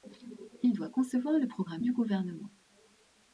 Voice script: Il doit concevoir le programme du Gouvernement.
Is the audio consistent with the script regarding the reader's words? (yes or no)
yes